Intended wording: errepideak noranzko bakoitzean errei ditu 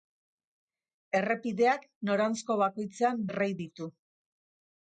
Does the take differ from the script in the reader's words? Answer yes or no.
no